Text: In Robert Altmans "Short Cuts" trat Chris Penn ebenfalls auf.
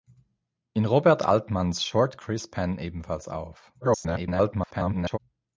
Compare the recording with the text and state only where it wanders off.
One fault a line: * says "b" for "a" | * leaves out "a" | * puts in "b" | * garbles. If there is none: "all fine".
* leaves out "Cuts trat"
* garbles